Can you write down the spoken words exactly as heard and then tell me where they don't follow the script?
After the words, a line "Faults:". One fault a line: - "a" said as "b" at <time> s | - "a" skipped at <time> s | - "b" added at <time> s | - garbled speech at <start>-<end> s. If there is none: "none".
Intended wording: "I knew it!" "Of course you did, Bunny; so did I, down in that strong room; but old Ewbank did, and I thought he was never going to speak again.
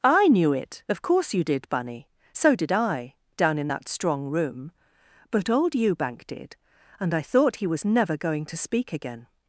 "I knew it!" "Of course you did, Bunny; so did I, down in that strong room; but old Ewbank did, and I thought he was never going to speak again.
Faults:
none